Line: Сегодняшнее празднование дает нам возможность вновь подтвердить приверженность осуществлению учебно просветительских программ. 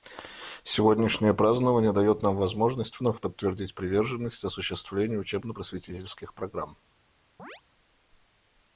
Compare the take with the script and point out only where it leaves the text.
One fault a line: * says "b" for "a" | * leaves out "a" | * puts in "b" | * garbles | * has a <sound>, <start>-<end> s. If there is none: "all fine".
* has a chirp, 7.4-7.6 s